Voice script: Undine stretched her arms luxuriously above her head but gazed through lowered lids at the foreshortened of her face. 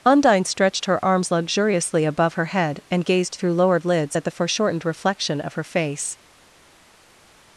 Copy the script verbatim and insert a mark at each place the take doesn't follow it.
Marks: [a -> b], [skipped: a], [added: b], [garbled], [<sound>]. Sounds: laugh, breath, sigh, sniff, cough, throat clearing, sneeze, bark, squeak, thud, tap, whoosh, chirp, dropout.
Undine stretched her arms luxuriously above her head [but -> and] gazed through lowered lids at the foreshortened [added: reflection] of her face.